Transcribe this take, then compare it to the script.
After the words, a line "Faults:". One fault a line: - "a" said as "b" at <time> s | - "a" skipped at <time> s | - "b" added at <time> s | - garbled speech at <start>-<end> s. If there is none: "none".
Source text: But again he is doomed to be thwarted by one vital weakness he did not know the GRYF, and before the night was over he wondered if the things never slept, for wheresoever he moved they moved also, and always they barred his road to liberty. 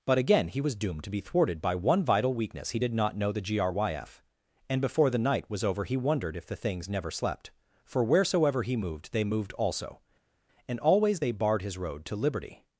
But again he was doomed to be thwarted by one vital weakness he did not know the GRYF, and before the night was over he wondered if the things never slept, for wheresoever he moved they moved also, and always they barred his road to liberty.
Faults:
- "is" said as "was" at 0.6 s